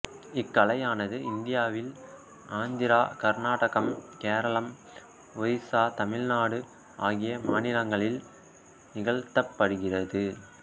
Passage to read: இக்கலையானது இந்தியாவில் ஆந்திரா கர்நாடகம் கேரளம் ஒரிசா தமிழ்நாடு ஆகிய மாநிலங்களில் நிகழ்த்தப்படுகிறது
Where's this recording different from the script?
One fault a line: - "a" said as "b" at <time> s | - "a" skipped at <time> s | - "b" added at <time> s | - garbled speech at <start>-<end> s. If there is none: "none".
none